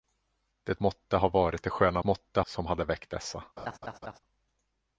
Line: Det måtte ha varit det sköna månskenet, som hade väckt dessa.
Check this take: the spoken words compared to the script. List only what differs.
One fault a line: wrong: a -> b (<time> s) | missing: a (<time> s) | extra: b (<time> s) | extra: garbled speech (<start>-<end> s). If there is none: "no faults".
wrong: månskenet -> måtte (2.0 s)